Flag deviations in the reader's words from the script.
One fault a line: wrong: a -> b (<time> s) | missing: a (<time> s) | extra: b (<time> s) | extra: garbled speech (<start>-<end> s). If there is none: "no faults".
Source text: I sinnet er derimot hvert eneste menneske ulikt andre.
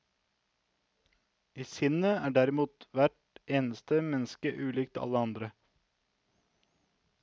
extra: alle (5.1 s)